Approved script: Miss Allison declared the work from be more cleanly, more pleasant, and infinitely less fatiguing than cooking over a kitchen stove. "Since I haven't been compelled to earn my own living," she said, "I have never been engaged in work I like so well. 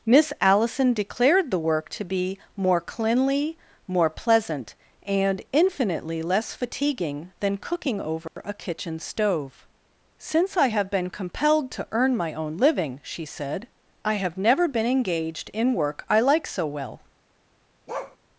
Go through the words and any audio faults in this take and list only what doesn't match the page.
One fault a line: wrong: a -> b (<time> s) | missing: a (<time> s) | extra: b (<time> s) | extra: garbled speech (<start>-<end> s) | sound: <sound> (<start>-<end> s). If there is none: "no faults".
wrong: from -> to (1.9 s)
sound: dropout (8.3-8.4 s)
wrong: haven't -> have (10.7 s)
sound: bark (17.9-18.2 s)